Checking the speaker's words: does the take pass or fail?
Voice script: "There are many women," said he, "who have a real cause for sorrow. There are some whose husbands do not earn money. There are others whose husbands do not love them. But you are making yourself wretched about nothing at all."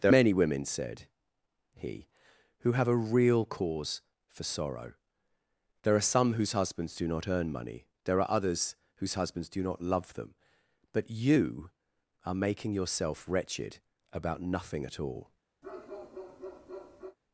fail